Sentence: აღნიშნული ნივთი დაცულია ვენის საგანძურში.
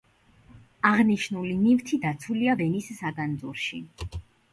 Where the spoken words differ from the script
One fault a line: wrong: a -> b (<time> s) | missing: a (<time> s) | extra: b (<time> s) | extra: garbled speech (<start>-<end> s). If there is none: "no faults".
no faults